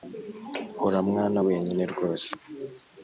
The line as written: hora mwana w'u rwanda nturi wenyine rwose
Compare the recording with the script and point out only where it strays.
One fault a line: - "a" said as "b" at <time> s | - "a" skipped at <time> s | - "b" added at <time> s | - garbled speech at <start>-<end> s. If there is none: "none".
- "w'u rwanda nturi" skipped at 1.4 s